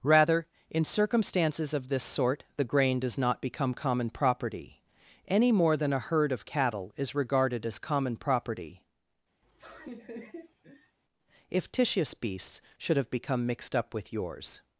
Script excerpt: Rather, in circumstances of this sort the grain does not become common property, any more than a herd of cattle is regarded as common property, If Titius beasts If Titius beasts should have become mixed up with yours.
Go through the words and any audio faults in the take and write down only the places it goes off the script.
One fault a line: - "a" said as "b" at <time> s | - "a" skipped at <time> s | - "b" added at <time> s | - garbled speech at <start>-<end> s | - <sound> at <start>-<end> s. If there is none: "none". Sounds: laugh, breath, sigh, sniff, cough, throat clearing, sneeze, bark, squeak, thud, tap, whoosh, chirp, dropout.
- laugh at 9.4-11.0 s
- "If Titius beasts" skipped at 12.6 s